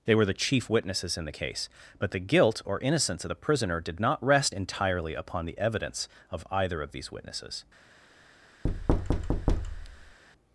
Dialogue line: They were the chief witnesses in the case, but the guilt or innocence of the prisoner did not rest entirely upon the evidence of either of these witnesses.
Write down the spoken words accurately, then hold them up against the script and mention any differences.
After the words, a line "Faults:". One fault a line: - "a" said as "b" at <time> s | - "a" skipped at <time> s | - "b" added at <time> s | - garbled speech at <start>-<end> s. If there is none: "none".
They were the chief witnesses in the case, but the guilt or innocence of the prisoner did not rest entirely upon the evidence of either of these witnesses.
Faults:
none